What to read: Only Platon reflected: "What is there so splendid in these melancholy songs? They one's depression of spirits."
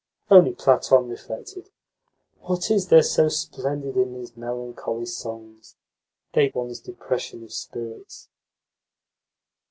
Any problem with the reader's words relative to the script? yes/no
no